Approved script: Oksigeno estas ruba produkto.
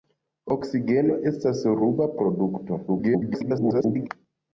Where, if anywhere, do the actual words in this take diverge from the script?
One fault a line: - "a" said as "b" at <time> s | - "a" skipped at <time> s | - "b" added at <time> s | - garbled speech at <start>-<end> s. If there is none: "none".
- garbled speech at 2.9-4.1 s